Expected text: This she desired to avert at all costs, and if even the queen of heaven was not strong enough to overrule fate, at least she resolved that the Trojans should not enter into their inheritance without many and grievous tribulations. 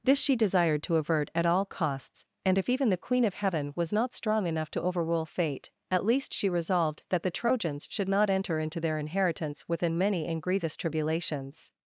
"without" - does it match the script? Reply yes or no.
no